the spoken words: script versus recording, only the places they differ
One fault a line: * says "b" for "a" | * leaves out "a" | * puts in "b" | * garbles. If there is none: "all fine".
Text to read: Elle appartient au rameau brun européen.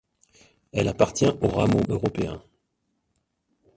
* leaves out "brun"